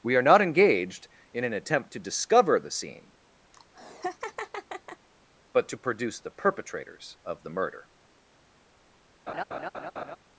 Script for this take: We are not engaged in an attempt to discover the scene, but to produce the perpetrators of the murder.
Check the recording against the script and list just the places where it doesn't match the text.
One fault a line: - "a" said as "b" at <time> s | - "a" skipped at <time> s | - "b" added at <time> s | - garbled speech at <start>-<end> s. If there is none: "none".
none